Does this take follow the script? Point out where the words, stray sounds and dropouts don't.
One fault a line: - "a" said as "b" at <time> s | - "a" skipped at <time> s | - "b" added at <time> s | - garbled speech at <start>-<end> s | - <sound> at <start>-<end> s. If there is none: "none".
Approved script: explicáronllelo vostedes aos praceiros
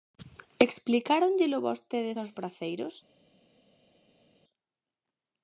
none